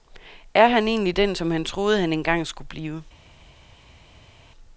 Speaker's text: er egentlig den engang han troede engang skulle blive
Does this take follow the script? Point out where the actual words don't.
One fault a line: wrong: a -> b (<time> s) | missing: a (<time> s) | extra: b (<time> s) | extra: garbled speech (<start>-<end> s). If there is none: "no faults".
extra: han (0.7 s)
wrong: engang -> som (1.3 s)
extra: han (2.0 s)